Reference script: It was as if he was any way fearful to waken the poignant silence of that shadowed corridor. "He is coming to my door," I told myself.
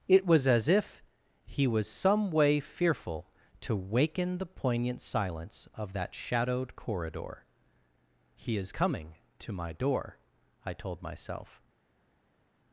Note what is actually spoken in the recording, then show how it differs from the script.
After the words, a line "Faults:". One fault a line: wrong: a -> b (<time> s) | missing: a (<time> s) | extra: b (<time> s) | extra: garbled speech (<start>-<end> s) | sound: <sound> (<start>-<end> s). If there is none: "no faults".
It was as if he was some way fearful to waken the poignant silence of that shadowed corridor. "He is coming to my door," I told myself.
Faults:
wrong: any -> some (1.9 s)